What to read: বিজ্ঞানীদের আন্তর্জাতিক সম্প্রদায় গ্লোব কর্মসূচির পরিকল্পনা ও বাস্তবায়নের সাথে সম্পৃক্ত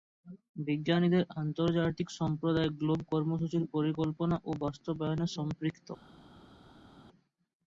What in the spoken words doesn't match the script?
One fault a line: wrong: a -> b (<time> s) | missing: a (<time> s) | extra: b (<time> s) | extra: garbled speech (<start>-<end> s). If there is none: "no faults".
missing: সাথে (5.3 s)